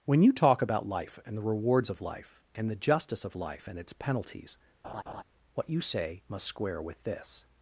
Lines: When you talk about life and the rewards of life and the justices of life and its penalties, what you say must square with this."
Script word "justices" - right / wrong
wrong